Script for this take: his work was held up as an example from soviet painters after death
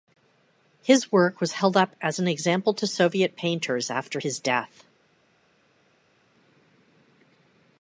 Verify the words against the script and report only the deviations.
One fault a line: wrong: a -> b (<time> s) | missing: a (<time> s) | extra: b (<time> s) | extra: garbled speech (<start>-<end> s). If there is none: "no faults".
wrong: from -> to (2.7 s)
extra: his (4.2 s)